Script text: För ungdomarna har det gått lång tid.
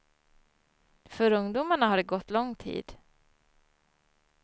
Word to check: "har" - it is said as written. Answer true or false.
true